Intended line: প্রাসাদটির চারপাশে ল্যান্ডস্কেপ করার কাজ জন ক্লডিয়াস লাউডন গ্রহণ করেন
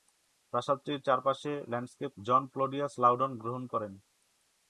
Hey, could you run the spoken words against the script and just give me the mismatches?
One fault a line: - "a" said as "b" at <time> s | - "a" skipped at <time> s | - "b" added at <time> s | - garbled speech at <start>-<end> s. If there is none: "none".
- "করার কাজ" skipped at 2.1 s